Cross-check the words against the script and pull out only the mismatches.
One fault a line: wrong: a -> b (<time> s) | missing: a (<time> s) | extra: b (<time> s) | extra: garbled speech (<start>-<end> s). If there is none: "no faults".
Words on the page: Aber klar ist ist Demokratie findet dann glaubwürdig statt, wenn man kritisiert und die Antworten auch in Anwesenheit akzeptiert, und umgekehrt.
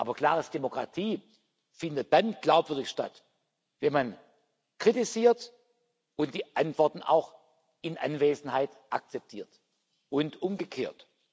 missing: ist (0.5 s)